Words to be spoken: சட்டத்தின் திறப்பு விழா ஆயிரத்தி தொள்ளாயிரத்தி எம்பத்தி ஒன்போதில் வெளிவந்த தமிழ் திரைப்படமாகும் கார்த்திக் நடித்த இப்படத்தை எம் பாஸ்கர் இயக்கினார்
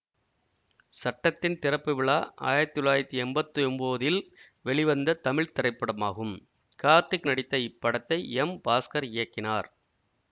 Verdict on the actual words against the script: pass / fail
pass